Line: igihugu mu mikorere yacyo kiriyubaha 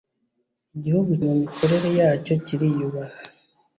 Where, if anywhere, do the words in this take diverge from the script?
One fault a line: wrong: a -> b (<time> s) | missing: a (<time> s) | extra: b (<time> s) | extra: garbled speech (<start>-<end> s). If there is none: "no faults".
no faults